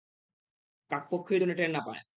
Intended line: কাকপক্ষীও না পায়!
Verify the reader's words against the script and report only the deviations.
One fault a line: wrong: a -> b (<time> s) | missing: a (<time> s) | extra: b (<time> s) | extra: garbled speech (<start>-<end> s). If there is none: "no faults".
extra: যেন টের (1.4 s)